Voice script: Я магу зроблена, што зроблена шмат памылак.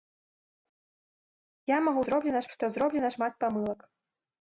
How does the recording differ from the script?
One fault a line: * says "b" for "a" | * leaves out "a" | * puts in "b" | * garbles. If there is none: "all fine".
all fine